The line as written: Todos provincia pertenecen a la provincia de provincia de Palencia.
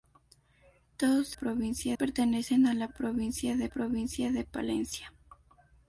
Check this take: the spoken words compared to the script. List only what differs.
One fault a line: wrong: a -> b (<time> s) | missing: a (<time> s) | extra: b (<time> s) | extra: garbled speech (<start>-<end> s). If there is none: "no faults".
no faults